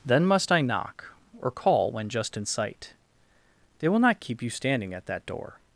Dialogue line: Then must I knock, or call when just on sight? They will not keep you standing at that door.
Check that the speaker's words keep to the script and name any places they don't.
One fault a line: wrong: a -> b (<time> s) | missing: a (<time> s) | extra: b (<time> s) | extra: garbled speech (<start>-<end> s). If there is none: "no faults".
wrong: on -> in (2.4 s)